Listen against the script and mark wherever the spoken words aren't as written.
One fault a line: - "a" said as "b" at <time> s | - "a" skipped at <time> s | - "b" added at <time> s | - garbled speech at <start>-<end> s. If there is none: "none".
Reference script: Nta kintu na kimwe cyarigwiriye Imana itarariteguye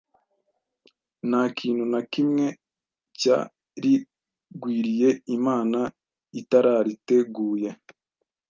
none